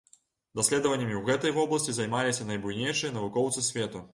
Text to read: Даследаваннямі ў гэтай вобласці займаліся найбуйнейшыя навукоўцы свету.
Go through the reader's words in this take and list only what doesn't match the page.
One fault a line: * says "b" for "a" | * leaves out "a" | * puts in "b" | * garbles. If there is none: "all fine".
all fine